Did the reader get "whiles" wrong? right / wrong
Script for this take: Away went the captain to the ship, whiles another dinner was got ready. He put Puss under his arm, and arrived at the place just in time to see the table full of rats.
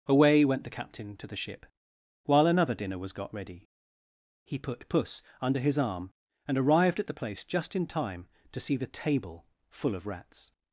wrong